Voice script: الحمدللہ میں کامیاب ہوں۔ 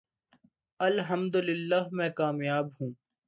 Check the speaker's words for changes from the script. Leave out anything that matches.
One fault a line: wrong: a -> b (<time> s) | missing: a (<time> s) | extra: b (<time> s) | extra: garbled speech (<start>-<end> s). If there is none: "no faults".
no faults